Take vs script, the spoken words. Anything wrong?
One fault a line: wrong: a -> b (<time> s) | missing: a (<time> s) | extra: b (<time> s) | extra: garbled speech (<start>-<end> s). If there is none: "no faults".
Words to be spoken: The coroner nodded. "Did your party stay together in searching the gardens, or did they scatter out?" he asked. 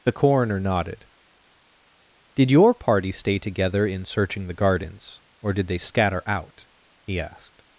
no faults